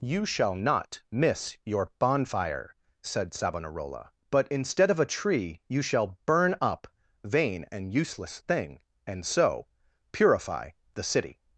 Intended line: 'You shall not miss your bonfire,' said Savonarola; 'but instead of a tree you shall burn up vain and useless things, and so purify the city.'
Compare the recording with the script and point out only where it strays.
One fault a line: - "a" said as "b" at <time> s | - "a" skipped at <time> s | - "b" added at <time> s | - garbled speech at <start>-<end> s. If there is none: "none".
- "things" said as "thing" at 8.5 s